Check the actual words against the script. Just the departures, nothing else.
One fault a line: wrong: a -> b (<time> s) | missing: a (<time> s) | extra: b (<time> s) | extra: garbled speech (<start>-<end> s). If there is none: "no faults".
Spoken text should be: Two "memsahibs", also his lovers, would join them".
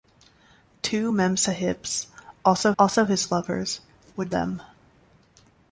extra: also (2.8 s)
missing: join (4.3 s)